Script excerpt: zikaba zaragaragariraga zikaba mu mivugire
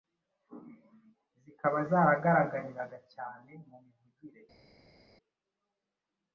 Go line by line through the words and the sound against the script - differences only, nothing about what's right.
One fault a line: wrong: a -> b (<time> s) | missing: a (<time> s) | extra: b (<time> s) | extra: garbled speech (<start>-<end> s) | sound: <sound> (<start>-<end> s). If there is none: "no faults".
wrong: zikaba -> cyane (3.1 s)